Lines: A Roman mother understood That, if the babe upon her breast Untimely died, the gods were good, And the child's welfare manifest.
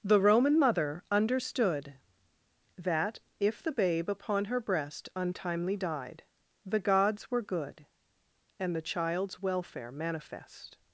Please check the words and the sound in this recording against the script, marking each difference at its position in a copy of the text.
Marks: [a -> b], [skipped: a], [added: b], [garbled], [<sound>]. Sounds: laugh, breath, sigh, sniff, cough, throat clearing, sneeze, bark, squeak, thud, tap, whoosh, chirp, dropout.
[A -> The] Roman mother understood That, if the babe upon her breast Untimely died, the gods were good, And the child's welfare manifest.